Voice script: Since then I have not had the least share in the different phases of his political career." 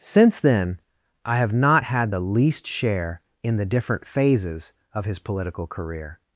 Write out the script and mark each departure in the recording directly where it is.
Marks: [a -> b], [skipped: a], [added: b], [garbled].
Since then I have not had the least share in the different phases of his political career."